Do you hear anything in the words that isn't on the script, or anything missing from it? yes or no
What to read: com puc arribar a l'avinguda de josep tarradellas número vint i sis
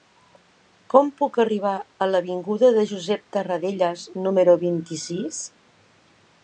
no